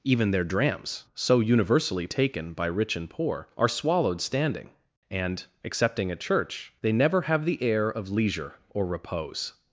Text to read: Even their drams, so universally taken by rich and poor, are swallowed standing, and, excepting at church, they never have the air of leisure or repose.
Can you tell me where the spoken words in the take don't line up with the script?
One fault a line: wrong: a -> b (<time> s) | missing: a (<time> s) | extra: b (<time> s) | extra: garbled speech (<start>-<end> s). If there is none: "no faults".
no faults